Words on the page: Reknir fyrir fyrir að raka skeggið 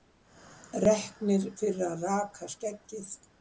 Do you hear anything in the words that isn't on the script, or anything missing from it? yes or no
yes